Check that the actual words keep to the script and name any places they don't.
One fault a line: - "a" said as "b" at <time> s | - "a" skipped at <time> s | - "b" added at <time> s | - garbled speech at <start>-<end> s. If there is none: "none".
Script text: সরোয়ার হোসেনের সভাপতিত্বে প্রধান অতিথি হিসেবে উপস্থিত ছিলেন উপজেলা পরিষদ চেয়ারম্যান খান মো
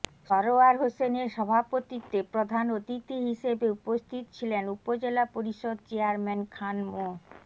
none